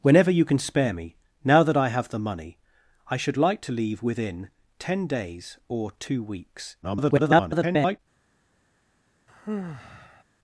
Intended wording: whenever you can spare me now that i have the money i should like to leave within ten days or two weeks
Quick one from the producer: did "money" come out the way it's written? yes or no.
yes